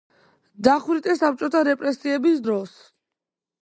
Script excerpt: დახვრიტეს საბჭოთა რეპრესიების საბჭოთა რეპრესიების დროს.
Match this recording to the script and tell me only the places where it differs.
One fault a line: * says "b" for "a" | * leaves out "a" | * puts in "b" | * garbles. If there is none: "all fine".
* leaves out "საბჭოთა რეპრესიების"